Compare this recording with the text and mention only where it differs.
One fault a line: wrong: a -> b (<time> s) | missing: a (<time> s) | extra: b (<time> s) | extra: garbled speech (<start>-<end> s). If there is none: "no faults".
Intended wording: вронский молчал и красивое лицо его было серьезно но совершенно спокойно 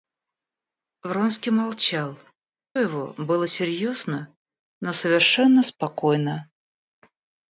missing: и красивое лицо (2.2 s)